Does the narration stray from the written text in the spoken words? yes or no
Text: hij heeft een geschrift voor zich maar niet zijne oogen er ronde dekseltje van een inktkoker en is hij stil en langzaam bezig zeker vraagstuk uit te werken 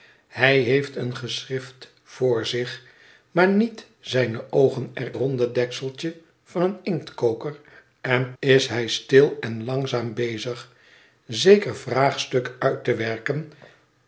no